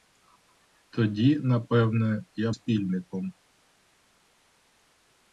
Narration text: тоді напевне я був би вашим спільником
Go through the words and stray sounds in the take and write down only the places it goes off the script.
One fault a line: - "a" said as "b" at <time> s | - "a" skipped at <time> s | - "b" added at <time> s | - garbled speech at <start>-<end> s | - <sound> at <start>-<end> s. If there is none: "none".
- "був би вашим" skipped at 2.5 s